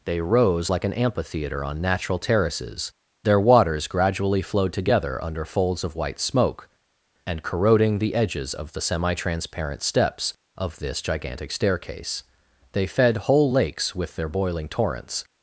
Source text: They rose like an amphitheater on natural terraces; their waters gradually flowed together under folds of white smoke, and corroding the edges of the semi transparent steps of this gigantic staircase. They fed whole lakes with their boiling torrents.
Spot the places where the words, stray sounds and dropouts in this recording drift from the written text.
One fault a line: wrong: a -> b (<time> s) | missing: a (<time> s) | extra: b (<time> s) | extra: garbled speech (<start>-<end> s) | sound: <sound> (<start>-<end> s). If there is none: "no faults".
no faults